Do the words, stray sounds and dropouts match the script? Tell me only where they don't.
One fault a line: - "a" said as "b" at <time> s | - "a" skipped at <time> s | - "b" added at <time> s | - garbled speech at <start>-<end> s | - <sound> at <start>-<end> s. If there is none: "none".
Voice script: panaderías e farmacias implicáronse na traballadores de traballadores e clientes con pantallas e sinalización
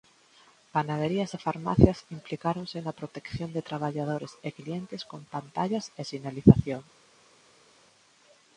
- "traballadores" said as "protección" at 3.0 s